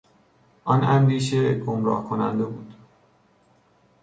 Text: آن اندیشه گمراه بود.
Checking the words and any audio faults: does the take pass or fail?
fail